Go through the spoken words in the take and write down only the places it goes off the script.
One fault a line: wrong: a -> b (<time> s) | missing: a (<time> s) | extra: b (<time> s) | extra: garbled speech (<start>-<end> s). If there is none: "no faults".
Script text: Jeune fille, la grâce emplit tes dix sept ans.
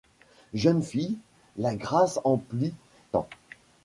missing: tes dix sept (2.7 s)